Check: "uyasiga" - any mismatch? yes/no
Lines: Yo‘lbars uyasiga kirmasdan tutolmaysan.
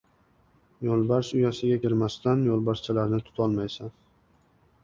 no